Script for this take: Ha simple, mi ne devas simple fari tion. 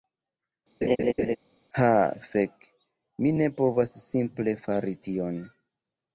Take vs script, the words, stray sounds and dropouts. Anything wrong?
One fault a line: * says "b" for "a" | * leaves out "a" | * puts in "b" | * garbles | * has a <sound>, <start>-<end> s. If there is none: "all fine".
* has a laugh, 0.8-1.4 s
* says "fek" for "simple"
* says "povas" for "devas"